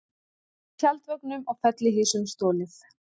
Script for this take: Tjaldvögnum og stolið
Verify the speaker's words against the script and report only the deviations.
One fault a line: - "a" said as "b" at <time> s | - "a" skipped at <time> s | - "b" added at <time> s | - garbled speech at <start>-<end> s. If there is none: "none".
- "fellihýsum" added at 1.7 s